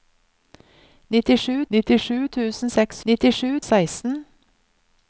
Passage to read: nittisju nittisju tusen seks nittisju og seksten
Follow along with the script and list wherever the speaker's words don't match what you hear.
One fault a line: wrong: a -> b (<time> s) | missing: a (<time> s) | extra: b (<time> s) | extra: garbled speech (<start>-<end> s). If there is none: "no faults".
no faults